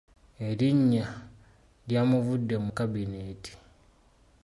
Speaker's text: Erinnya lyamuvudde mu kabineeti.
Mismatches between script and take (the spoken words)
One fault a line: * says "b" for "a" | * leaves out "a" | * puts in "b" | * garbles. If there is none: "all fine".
all fine